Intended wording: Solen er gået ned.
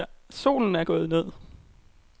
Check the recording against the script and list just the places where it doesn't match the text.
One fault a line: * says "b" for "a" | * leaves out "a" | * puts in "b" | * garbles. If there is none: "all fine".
all fine